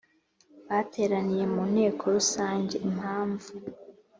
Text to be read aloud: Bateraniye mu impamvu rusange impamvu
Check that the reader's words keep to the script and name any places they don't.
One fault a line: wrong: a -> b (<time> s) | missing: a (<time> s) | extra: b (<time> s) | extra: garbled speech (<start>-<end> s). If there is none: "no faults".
wrong: impamvu -> nteko (1.7 s)